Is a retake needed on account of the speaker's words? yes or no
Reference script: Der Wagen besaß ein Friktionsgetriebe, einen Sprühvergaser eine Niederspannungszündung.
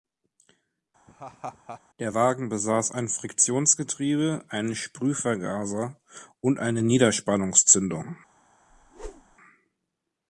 yes